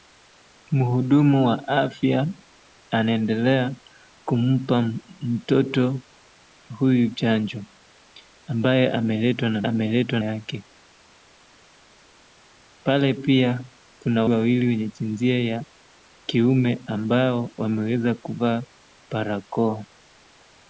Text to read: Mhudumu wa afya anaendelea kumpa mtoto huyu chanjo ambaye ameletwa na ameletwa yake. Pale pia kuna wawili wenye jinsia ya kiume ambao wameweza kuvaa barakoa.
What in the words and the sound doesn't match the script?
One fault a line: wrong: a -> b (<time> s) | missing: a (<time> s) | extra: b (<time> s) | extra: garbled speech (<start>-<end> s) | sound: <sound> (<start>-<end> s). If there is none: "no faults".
no faults